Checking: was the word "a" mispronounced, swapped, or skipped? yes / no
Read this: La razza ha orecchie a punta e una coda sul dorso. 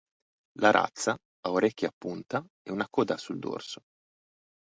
no